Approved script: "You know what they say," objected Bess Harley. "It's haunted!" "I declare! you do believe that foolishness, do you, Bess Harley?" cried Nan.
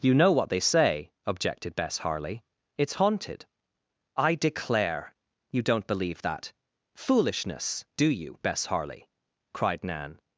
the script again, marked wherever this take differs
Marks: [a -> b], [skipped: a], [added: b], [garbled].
"You know what they say," objected Bess Harley. "It's haunted!" "I declare! you [do -> don't] believe that foolishness, do you, Bess Harley?" cried Nan.